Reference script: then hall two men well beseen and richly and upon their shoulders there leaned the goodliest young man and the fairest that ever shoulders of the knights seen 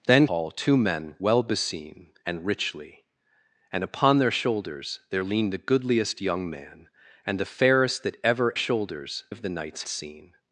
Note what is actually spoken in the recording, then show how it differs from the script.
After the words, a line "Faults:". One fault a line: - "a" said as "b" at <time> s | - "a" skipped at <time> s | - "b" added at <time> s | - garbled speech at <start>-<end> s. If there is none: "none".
then hall two men well beseen and richly and upon their shoulders there leaned the goodliest young man and the fairest that ever shoulders of the knights seen
Faults:
none